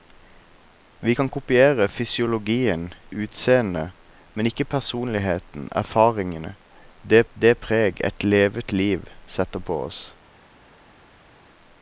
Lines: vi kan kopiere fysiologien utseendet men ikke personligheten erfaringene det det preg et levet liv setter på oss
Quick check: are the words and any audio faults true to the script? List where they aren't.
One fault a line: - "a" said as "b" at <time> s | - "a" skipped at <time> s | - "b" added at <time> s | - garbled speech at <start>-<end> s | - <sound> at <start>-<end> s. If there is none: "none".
none